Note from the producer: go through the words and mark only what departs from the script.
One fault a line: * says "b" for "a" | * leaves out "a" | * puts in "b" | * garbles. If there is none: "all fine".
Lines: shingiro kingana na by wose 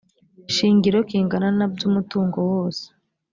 * puts in "umutungo"